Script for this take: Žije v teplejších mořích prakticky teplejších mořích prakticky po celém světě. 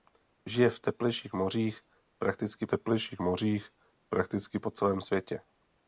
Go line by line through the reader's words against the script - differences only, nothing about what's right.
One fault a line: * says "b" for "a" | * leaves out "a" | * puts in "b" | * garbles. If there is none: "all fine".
all fine